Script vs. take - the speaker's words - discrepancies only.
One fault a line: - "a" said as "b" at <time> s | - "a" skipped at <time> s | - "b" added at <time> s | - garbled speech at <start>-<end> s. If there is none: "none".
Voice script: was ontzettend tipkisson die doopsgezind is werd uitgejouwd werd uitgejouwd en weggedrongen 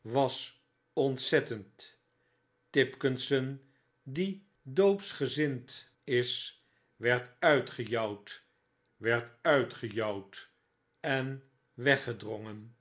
none